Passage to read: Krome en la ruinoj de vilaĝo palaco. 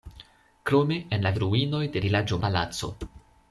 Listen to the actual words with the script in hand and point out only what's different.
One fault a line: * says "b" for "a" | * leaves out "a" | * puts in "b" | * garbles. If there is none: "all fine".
all fine